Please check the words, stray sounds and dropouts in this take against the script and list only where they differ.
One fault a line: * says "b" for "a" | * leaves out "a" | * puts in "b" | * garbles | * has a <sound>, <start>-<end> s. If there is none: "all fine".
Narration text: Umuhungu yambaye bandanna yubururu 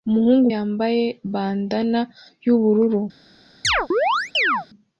* has a chirp, 3.6-4.7 s